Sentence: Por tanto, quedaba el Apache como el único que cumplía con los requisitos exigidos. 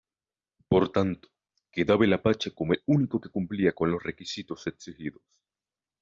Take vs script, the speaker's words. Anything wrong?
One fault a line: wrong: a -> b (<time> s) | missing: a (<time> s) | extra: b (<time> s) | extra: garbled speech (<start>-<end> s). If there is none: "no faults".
no faults